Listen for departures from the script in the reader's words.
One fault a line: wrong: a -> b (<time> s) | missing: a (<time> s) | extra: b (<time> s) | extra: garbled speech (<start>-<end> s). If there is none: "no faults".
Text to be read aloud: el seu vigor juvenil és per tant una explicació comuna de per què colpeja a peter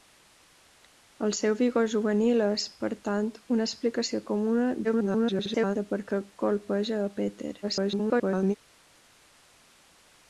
extra: garbled speech (4.8-5.8 s)
extra: garbled speech (7.6-8.5 s)